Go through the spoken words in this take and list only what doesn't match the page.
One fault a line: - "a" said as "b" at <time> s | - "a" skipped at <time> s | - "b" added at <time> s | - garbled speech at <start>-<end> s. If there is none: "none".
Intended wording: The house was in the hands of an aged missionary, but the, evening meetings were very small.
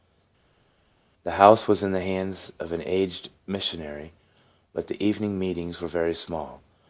none